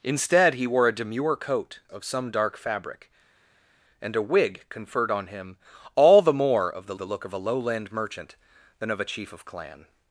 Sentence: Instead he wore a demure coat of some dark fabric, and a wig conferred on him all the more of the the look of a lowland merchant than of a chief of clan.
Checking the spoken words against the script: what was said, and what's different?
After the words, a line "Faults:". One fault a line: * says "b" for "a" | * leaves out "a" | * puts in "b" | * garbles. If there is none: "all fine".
Instead he wore a demure coat of some dark fabric, and a wig conferred on him all the more of the the look of a lowland merchant than of a chief of clan.
Faults:
all fine